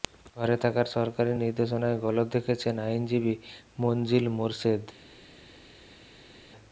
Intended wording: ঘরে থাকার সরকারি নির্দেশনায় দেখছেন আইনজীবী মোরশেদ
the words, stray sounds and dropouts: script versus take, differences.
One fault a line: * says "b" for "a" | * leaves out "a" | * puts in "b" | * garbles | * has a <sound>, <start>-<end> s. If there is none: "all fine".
* puts in "গলদ"
* puts in "মনজিল"